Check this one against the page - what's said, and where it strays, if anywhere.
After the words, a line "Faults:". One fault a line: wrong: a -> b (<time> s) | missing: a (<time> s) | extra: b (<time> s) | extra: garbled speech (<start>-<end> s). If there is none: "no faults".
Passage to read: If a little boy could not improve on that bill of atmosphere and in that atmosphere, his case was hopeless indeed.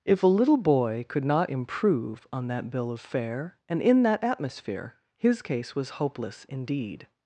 If a little boy could not improve on that bill of fare and in that atmosphere, his case was hopeless indeed.
Faults:
wrong: atmosphere -> fare (3.0 s)